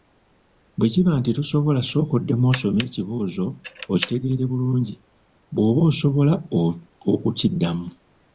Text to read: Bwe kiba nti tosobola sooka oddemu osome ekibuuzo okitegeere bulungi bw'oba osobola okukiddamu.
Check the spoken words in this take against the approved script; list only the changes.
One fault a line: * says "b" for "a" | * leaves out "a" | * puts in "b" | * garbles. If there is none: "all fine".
all fine